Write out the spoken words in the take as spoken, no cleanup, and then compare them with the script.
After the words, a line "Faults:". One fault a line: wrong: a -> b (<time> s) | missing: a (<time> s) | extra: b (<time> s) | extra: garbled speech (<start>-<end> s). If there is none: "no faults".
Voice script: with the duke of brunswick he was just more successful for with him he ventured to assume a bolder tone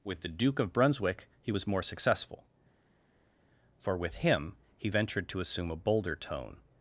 with the duke of brunswick he was more successful for with him he ventured to assume a bolder tone
Faults:
missing: just (1.7 s)